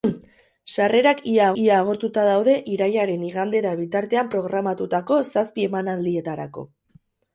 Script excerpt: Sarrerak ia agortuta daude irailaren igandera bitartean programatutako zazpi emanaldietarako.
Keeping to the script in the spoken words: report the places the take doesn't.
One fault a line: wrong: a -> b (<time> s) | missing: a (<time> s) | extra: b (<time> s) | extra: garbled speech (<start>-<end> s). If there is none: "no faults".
extra: ia (1.6 s)